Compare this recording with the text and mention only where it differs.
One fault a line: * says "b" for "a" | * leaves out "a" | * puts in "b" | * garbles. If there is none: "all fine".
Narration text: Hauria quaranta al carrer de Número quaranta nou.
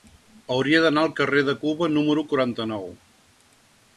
* says "d'anar" for "quaranta"
* puts in "Cuba"